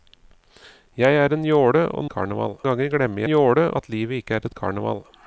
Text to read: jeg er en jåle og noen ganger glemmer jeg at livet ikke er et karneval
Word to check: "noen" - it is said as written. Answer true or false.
false